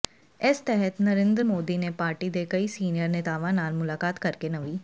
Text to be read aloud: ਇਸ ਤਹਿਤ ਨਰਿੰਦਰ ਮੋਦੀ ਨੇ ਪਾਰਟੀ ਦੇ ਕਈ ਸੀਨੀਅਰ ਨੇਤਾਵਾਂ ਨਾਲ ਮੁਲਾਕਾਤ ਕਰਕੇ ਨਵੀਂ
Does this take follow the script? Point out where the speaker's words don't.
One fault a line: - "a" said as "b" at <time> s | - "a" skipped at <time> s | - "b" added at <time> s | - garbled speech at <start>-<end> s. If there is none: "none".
none